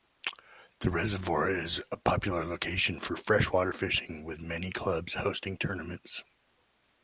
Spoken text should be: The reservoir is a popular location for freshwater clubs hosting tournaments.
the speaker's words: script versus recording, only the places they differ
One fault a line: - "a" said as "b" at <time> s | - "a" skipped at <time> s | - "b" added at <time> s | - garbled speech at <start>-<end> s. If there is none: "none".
- "fishing with many" added at 3.7 s